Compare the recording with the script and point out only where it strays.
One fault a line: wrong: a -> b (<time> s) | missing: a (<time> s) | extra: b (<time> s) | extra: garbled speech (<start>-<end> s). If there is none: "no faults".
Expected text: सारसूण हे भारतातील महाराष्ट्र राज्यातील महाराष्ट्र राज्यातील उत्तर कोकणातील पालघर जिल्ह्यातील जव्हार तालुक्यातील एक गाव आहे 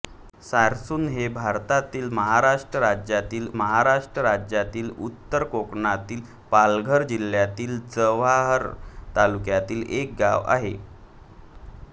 no faults